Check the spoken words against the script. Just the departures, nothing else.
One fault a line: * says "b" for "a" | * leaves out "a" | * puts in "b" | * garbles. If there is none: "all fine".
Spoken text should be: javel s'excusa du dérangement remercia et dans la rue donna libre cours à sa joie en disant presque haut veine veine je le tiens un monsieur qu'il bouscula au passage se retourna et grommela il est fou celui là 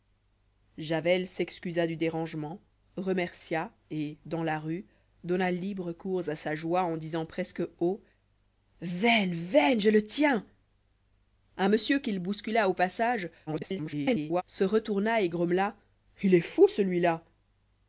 * garbles